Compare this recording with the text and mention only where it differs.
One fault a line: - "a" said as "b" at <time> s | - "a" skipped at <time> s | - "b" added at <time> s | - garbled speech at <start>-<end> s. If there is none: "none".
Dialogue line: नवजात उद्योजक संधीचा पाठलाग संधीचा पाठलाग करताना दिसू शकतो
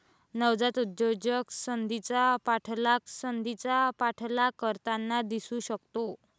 none